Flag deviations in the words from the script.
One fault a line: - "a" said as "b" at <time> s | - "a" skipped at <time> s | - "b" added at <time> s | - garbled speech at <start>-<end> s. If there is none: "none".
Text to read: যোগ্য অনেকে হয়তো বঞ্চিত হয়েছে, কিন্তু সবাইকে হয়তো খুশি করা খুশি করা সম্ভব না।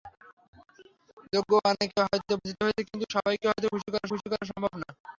none